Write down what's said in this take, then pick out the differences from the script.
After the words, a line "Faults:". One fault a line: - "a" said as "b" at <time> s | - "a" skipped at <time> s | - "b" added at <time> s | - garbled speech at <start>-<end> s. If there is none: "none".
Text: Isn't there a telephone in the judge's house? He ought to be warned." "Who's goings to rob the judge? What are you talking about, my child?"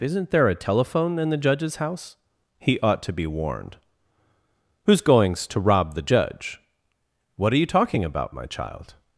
Isn't there a telephone in the judge's house? He ought to be warned." "Who's goings to rob the judge? What are you talking about, my child?"
Faults:
none